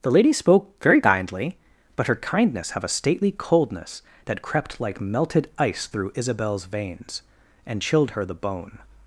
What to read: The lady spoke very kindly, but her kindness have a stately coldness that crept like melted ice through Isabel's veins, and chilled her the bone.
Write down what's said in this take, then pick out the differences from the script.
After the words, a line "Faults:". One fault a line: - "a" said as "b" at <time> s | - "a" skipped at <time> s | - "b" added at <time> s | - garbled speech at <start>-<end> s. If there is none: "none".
The lady spoke very kindly, but her kindness have a stately coldness that crept like melted ice through Isabel's veins, and chilled her the bone.
Faults:
none